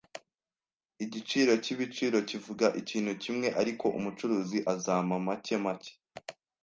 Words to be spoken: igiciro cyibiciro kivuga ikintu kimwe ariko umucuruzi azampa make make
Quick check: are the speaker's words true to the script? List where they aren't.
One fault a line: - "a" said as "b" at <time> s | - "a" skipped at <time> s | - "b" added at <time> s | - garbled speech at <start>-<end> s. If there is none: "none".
none